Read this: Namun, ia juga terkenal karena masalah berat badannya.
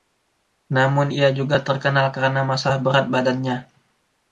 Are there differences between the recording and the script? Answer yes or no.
no